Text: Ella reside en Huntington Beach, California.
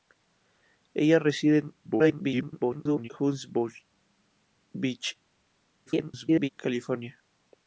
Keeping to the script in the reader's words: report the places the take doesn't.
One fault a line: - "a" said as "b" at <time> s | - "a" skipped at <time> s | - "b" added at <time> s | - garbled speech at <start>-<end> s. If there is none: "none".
- garbled speech at 1.8-3.1 s
- garbled speech at 5.9-6.5 s